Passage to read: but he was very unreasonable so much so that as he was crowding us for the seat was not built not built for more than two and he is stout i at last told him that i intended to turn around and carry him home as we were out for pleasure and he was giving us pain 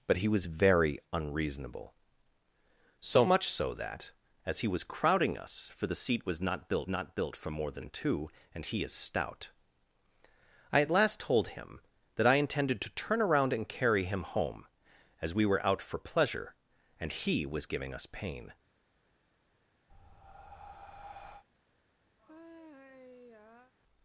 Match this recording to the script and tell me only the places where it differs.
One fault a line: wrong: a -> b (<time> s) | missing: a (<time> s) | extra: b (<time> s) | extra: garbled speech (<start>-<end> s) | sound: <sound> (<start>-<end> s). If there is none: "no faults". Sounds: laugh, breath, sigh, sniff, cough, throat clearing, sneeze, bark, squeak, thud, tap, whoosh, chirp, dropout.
sound: breath (19.9-21.4 s)
sound: sigh (22.2-23.7 s)